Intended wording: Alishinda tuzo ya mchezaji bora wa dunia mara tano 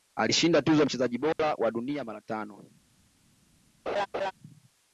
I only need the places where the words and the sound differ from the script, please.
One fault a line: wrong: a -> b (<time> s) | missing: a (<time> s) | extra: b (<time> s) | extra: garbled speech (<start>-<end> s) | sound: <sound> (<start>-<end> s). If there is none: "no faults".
sound: dropout (1.3-1.4 s)
sound: laugh (3.9-4.3 s)